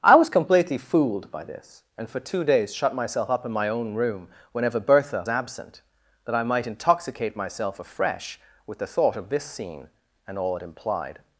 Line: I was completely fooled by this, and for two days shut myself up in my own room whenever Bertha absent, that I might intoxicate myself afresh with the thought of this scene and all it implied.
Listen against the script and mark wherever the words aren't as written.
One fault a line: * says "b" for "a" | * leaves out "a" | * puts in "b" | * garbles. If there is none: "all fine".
all fine